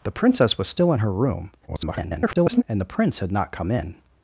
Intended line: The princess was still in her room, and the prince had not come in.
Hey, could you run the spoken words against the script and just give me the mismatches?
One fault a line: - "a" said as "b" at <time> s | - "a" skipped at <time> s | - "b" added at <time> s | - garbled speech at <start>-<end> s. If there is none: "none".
- garbled speech at 1.7-2.6 s